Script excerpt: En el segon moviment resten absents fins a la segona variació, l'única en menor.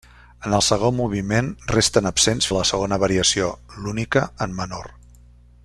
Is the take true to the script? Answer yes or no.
no